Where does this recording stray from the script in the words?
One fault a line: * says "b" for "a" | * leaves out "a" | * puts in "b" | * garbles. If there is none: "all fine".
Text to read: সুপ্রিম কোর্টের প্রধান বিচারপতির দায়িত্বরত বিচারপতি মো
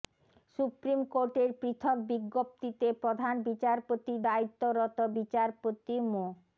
* puts in "পৃথক বিজ্ঞপ্তিতে"